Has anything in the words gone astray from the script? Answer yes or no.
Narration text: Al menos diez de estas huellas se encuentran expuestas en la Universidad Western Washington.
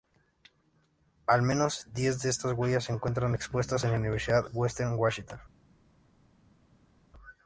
no